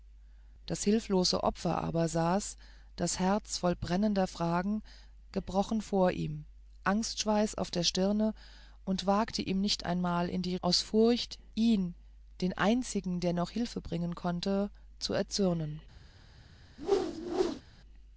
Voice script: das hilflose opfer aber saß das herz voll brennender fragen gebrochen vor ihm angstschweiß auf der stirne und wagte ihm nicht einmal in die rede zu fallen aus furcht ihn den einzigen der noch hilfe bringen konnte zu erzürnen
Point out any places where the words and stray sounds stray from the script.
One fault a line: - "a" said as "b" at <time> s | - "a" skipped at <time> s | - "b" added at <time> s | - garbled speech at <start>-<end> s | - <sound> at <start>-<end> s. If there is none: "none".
- "rede zu fallen" skipped at 10.6 s
- whoosh at 16.8-17.6 s